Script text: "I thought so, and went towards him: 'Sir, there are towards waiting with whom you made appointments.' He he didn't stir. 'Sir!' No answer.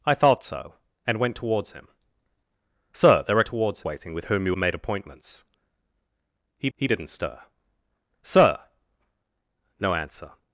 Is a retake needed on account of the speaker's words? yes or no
no